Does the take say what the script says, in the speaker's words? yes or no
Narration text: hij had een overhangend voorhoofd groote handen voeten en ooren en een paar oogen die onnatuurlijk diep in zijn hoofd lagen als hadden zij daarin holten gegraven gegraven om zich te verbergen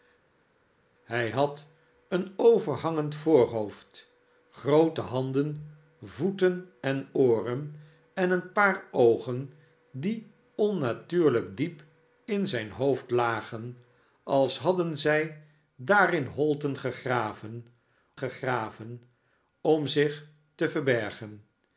yes